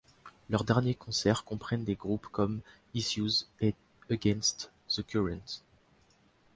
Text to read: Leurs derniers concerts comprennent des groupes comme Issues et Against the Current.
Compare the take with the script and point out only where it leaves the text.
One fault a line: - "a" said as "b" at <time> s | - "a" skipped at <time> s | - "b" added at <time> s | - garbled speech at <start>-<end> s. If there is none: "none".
none